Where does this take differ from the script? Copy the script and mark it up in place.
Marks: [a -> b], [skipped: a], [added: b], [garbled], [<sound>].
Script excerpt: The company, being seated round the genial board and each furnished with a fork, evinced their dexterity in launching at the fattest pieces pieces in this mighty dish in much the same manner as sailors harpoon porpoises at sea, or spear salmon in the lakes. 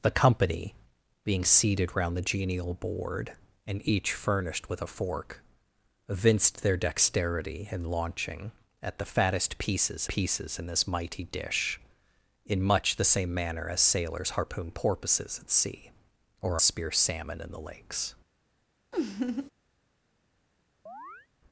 The company, being seated round the genial board and each furnished with a fork, evinced their dexterity in launching at the fattest pieces pieces in this mighty dish in much the same manner as sailors harpoon porpoises at sea, or spear salmon in the lakes. [laugh] [chirp]